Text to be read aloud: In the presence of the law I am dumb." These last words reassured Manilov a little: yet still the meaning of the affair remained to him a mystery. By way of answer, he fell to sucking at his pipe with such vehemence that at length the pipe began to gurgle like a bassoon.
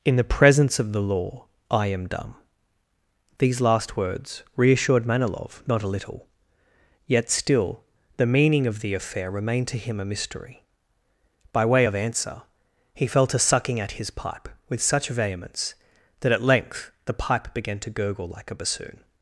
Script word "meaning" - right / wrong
right